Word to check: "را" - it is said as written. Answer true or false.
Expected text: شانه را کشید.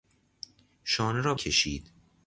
true